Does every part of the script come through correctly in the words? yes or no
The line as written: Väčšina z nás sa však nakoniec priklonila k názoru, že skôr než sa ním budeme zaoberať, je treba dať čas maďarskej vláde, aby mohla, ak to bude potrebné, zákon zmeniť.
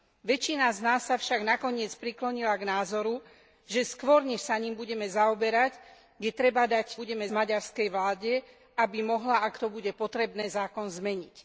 no